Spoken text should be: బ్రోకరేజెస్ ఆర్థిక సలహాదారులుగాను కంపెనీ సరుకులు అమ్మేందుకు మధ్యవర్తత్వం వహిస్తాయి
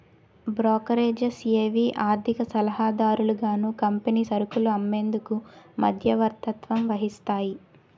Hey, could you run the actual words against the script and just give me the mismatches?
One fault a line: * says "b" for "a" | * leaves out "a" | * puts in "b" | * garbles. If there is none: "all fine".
* puts in "ఏవి"